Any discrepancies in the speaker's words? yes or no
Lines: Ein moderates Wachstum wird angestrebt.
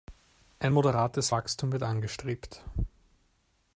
no